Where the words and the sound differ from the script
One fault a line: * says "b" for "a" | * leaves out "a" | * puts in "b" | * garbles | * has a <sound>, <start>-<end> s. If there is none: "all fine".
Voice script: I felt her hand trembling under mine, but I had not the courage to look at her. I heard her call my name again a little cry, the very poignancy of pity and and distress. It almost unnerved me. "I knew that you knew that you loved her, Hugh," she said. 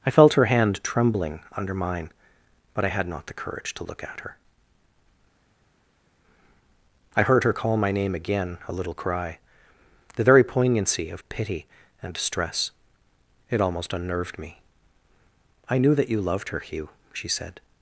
* leaves out "and"
* leaves out "knew that you"